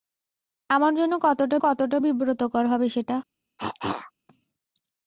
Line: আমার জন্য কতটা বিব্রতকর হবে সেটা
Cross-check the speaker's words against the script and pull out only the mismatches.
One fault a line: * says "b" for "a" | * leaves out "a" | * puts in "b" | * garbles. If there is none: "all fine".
* puts in "কতটা"